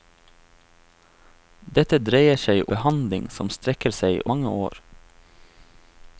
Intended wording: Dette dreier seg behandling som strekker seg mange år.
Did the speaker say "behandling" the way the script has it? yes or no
yes